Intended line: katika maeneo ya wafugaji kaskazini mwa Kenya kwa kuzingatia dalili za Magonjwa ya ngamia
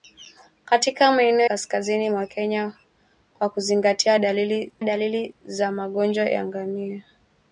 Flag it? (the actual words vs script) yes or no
yes